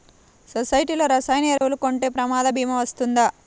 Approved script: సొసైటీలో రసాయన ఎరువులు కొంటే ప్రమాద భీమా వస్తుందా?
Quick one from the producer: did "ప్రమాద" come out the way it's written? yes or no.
yes